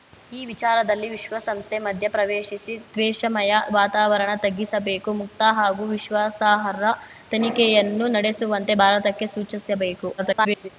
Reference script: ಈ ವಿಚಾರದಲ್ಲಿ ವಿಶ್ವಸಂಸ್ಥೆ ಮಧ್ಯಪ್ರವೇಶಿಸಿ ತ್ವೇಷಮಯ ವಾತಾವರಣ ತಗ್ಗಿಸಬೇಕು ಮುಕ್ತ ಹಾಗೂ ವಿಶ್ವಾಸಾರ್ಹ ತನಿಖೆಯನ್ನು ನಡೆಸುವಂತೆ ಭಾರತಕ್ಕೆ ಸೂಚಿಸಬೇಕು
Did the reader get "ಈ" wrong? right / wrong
right